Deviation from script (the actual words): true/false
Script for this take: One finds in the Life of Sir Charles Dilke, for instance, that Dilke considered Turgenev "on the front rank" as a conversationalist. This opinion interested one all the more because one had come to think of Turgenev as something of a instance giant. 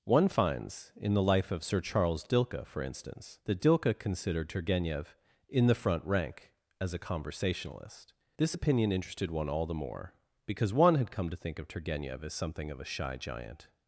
true